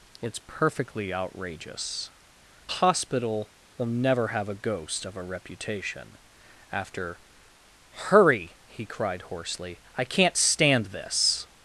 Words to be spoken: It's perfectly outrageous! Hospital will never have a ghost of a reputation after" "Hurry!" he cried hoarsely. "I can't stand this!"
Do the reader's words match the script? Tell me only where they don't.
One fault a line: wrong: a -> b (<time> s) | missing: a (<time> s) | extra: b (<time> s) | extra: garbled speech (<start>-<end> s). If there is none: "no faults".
no faults